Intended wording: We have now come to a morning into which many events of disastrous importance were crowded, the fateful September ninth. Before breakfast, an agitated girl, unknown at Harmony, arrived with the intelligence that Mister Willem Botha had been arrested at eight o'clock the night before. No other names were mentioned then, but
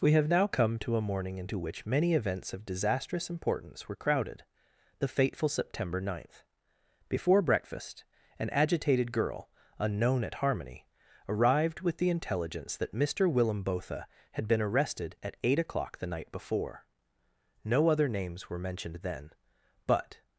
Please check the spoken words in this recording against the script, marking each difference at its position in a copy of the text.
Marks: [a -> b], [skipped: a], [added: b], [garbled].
We have now come to a morning into which many events of disastrous importance were crowded, the fateful September ninth. Before breakfast, an agitated girl, unknown at Harmony, arrived with the intelligence that Mister Willem Botha had been arrested at eight o'clock the night before. No other names were mentioned then, but